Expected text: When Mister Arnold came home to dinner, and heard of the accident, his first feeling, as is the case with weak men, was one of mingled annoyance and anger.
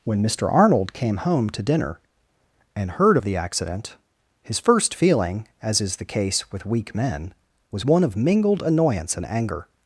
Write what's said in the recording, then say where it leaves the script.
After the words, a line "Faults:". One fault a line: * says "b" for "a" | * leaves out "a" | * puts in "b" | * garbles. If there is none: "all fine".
When Mister Arnold came home to dinner, and heard of the accident, his first feeling, as is the case with weak men, was one of mingled annoyance and anger.
Faults:
all fine